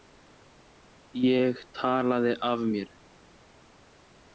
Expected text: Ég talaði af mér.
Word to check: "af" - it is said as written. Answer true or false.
true